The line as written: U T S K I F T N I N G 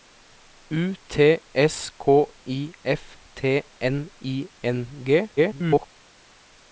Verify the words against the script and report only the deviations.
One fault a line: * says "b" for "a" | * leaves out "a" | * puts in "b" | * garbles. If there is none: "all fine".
* garbles